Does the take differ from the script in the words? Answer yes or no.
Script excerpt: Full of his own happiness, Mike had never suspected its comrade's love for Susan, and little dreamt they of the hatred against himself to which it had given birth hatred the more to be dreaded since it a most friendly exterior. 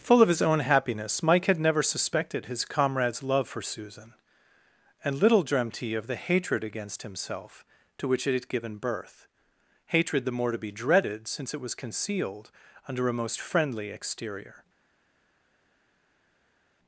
yes